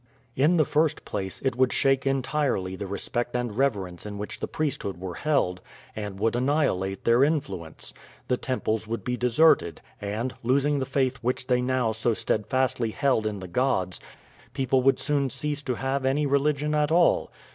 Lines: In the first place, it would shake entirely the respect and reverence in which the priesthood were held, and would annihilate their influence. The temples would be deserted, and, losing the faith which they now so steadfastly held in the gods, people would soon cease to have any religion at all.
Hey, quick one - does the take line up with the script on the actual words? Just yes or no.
yes